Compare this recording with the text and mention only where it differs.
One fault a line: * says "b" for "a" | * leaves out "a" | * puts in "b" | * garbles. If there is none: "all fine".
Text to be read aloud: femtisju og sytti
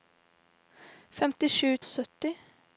all fine